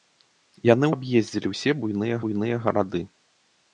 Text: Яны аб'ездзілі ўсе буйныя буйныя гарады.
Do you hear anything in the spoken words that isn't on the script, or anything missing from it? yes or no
no